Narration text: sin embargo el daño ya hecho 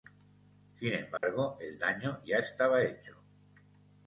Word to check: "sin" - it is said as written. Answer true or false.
true